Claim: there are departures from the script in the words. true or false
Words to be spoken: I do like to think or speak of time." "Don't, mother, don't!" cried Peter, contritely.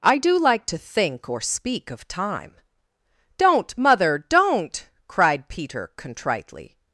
false